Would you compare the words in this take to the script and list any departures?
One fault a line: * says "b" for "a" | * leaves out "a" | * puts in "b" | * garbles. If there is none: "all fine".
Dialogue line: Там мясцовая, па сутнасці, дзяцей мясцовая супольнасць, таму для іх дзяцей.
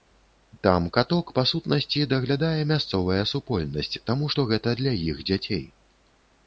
* says "каток" for "мясцовая"
* says "даглядае" for "дзяцей"
* puts in "што гэта"